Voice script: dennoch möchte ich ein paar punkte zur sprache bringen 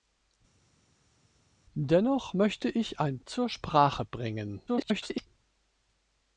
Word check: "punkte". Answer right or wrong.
wrong